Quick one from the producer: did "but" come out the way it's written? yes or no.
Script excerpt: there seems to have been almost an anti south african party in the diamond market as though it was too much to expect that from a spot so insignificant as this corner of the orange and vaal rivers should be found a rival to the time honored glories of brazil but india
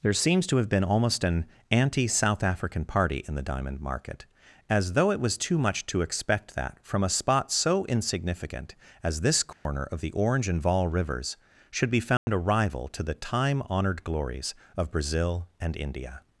no